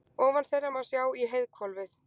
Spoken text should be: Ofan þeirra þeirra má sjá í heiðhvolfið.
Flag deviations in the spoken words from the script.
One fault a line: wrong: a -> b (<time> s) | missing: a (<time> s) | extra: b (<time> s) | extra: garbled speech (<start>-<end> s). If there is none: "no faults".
missing: þeirra (0.7 s)